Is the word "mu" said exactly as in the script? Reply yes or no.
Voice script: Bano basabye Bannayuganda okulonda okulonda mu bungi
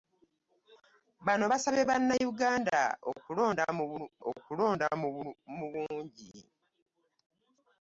yes